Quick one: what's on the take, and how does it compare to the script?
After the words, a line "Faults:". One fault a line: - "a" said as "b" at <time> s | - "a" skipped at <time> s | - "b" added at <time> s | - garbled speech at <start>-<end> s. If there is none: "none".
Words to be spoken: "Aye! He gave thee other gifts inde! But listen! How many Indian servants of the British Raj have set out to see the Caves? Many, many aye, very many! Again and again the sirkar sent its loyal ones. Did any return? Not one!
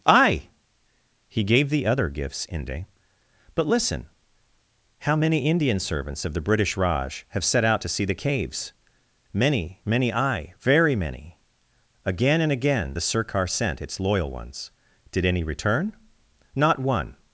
"Aye! He gave thee other gifts inde! But listen! How many Indian servants of the British Raj have set out to see the Caves? Many, many aye, very many! Again and again the sirkar sent its loyal ones. Did any return? Not one!
Faults:
none